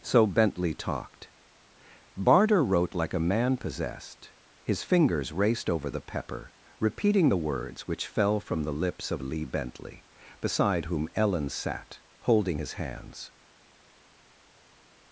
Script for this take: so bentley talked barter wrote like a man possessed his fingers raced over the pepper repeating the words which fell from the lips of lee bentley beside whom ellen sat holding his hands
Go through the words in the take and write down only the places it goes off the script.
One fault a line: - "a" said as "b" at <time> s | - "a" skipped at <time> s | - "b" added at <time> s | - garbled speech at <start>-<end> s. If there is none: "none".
none